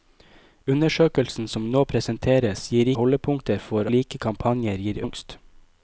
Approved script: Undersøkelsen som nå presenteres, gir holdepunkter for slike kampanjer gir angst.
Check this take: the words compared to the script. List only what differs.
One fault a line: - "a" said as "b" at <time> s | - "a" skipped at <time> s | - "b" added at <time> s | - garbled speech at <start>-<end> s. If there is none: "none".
none